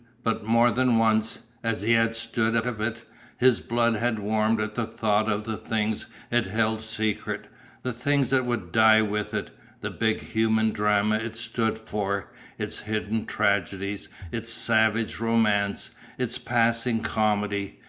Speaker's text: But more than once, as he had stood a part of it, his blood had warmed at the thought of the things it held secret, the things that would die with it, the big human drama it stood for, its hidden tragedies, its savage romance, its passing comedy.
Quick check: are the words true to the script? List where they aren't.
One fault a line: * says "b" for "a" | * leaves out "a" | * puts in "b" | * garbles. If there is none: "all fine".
* leaves out "part"